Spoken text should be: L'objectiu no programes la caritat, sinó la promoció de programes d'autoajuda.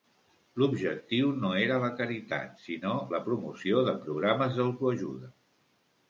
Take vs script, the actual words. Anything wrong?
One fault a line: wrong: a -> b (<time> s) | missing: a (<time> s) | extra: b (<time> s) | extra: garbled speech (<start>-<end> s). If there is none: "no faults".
wrong: programes -> era (1.6 s)